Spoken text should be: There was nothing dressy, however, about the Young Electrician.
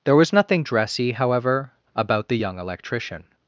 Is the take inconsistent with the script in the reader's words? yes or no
no